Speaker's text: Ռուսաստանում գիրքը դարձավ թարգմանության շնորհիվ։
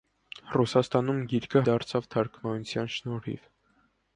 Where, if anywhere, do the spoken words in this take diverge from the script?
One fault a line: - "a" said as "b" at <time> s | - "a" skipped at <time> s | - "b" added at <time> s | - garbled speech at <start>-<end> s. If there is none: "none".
none